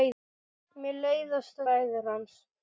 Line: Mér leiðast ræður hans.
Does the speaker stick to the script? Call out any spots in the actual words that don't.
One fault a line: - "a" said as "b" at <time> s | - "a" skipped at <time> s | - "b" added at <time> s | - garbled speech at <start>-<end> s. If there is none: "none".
none